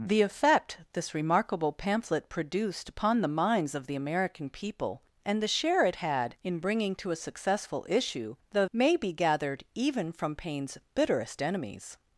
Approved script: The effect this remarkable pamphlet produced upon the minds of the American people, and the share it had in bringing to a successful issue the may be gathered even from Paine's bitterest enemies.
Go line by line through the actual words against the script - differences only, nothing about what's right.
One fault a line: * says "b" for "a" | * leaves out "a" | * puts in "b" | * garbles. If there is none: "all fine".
all fine